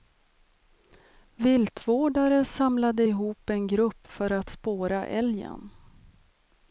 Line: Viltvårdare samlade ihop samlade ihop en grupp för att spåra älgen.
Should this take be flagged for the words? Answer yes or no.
yes